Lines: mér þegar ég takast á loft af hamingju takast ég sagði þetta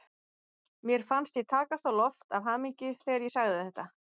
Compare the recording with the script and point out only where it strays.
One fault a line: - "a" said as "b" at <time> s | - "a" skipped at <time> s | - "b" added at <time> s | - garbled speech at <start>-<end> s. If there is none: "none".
- "þegar" said as "fannst" at 1.1 s
- "takast" said as "þegar" at 3.0 s